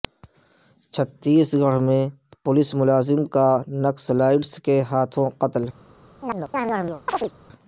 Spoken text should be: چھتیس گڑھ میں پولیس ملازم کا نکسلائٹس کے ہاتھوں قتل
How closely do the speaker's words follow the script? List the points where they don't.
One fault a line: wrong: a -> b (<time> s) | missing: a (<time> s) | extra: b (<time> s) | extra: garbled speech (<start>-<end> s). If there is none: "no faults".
no faults